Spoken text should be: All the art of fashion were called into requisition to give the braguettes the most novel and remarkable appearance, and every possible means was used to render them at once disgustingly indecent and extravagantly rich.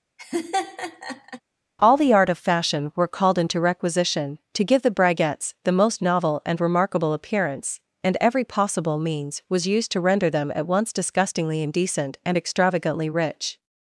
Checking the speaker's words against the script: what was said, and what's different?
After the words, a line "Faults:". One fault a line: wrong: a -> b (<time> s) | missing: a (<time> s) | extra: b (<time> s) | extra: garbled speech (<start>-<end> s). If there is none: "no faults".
All the art of fashion were called into requisition to give the braguettes the most novel and remarkable appearance, and every possible means was used to render them at once disgustingly indecent and extravagantly rich.
Faults:
no faults